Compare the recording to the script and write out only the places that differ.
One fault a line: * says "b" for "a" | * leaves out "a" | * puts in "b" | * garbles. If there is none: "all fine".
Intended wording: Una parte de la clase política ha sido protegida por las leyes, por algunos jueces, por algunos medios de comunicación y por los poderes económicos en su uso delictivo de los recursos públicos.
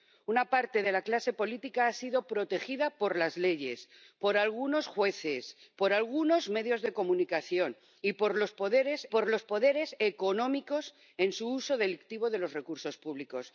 * puts in "por los poderes"